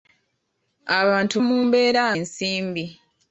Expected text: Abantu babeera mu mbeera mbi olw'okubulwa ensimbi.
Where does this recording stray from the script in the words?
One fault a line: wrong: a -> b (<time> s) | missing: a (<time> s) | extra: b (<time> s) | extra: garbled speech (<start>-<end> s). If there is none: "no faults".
missing: babeera (1.4 s)
missing: mbi olw'okubulwa (2.0 s)